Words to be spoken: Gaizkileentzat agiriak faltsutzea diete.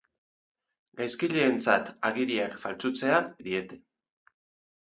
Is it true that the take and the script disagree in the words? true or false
false